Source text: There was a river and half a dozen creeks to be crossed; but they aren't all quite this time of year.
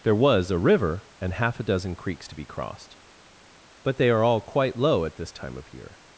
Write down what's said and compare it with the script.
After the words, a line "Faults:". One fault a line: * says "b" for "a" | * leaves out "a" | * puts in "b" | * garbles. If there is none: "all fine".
There was a river and half a dozen creeks to be crossed; but they are all quite low at this time of year.
Faults:
* says "are" for "aren't"
* puts in "low at"